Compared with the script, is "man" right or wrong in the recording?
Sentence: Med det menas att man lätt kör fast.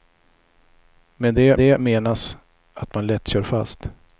right